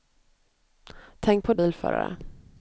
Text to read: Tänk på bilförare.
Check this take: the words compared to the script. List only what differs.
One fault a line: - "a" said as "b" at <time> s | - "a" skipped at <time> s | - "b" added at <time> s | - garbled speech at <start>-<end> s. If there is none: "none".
none